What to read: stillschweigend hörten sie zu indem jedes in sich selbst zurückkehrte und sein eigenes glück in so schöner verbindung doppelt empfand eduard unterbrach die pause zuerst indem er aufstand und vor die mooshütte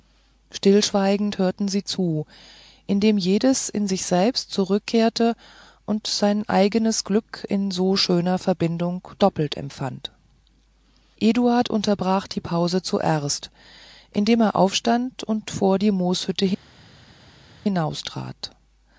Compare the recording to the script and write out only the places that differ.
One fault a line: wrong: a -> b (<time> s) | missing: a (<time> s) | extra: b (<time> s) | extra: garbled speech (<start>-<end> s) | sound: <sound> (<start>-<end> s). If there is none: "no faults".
no faults